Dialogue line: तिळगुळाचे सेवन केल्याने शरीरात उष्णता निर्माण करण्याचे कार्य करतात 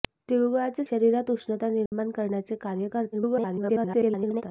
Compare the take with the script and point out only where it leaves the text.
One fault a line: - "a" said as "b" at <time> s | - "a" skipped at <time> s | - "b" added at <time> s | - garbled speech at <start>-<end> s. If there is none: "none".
- "सेवन केल्याने" skipped at 0.8 s
- garbled speech at 3.1-4.4 s